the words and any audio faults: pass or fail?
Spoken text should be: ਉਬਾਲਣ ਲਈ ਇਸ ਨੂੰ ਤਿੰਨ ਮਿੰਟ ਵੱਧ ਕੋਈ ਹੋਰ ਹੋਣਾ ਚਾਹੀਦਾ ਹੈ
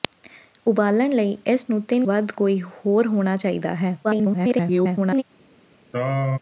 fail